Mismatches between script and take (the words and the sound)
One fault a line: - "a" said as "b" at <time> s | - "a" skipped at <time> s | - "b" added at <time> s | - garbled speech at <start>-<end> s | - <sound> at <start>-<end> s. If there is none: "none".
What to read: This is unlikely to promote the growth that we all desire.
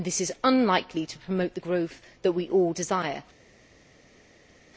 none